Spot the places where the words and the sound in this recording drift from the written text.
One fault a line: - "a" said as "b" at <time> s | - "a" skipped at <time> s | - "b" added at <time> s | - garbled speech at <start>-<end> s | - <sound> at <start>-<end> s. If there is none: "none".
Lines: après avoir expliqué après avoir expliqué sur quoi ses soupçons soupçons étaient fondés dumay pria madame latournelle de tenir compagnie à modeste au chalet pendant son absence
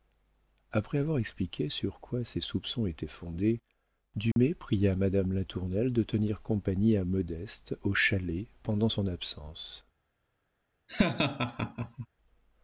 - "après avoir expliqué" skipped at 1.7 s
- "soupçons" skipped at 2.9 s
- dropout at 4.3-4.4 s
- laugh at 10.9-12.1 s